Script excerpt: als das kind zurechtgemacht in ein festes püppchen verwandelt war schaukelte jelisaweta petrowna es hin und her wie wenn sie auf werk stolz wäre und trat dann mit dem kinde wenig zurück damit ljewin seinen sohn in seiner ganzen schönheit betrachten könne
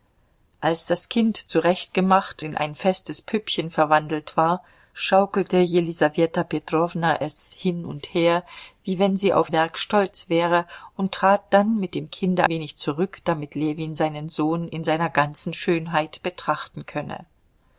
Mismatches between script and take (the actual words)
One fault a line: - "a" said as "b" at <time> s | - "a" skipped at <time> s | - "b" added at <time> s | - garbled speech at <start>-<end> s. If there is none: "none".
none